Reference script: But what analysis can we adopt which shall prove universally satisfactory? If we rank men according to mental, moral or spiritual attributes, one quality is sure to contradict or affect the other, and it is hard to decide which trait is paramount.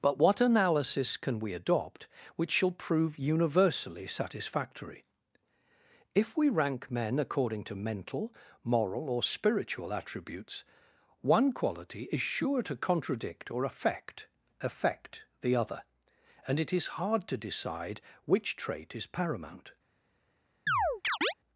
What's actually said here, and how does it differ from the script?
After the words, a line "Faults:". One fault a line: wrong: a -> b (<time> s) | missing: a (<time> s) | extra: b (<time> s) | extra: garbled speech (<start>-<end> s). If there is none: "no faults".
But what analysis can we adopt which shall prove universally satisfactory? If we rank men according to mental, moral or spiritual attributes, one quality is sure to contradict or affect affect the other, and it is hard to decide which trait is paramount.
Faults:
extra: affect (14.6 s)